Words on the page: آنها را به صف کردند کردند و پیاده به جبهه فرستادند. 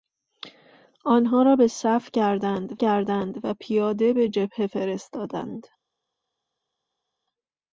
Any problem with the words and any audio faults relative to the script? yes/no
no